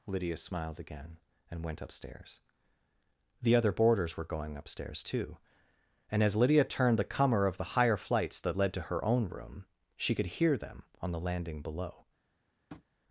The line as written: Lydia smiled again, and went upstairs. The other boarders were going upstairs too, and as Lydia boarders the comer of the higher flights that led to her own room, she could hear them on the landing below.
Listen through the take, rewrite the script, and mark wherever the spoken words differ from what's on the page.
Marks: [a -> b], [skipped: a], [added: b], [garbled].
Lydia smiled again, and went upstairs. The other boarders were going upstairs too, and as Lydia [boarders -> turned] the comer of the higher flights that led to her own room, she could hear them on the landing below.